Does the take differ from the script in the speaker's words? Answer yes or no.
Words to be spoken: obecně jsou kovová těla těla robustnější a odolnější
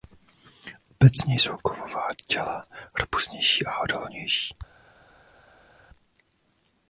yes